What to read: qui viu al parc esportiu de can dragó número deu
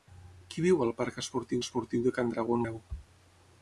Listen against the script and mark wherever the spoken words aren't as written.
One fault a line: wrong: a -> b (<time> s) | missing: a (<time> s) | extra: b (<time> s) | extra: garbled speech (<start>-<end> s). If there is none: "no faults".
extra: esportiu (1.6 s)
missing: número (2.6 s)